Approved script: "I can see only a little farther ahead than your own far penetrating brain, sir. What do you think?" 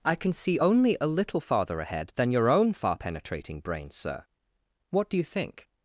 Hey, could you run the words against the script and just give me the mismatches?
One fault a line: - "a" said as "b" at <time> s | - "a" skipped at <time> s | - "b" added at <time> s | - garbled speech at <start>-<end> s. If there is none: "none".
none